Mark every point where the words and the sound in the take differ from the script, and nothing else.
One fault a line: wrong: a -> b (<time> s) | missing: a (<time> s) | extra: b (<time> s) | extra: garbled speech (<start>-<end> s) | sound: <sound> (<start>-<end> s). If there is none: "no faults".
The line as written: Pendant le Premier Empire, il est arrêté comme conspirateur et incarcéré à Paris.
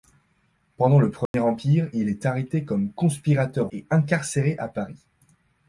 sound: dropout (1.3-1.3 s)